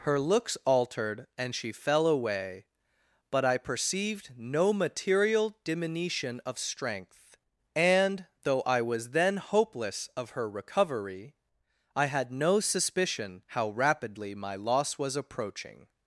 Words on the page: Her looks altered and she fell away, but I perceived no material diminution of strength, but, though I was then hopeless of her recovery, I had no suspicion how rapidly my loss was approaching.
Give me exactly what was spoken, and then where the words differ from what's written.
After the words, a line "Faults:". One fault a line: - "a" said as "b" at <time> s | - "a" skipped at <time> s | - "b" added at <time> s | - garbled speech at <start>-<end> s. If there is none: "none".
Her looks altered and she fell away, but I perceived no material diminution of strength, and, though I was then hopeless of her recovery, I had no suspicion how rapidly my loss was approaching.
Faults:
- "but" said as "and" at 7.8 s